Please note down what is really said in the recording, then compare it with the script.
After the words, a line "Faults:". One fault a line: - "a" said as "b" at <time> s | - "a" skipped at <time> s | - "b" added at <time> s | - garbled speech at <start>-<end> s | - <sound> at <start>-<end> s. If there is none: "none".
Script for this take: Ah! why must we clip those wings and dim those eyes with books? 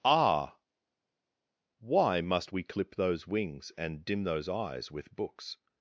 Ah! why must we clip those wings and dim those eyes with books?
Faults:
none